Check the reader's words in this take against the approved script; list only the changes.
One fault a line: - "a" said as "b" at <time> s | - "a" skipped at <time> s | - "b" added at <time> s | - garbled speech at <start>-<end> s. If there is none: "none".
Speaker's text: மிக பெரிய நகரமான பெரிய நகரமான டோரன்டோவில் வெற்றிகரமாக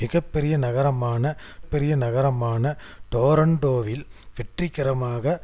none